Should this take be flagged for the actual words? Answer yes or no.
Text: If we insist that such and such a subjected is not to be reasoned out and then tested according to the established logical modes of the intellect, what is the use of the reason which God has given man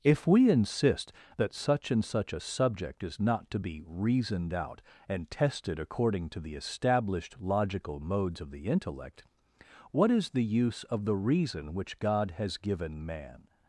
yes